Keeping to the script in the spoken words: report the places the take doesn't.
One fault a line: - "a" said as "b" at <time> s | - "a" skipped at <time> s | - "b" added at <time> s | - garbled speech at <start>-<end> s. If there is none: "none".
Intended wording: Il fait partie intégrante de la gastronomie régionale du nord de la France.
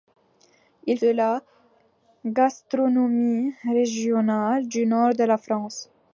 - "fait partie intégrante" skipped at 1.0 s